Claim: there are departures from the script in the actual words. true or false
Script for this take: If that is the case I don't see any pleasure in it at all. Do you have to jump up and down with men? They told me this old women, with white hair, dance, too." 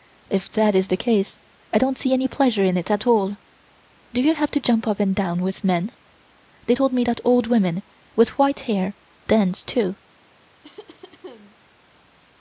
true